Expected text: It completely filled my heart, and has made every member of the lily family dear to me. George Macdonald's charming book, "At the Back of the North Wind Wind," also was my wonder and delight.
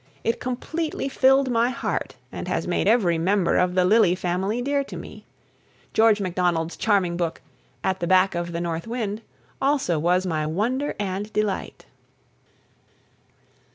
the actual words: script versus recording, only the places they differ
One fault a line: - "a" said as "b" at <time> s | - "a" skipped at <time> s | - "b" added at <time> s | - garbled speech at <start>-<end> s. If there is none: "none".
- "Wind" skipped at 9.2 s